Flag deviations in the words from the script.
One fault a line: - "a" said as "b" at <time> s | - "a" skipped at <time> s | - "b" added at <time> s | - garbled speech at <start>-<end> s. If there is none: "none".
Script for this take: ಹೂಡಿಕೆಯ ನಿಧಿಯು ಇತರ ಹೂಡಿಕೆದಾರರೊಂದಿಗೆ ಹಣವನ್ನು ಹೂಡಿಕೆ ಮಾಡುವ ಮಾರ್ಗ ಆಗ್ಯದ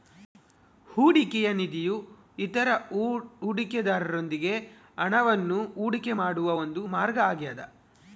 - "ಒಂದು" added at 6.6 s